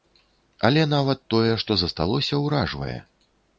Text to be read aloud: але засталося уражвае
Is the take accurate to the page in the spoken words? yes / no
no